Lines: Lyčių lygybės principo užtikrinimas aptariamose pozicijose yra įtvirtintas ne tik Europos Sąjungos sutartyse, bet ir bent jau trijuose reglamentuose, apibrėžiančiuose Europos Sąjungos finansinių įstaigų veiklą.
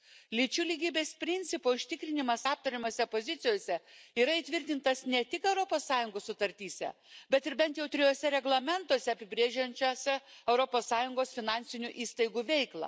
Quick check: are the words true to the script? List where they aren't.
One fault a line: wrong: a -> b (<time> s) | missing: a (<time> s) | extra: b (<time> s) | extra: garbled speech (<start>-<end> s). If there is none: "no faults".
no faults